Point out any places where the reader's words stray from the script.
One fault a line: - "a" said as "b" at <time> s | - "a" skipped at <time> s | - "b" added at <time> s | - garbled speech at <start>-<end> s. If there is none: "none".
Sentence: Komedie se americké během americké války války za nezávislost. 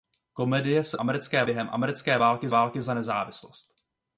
none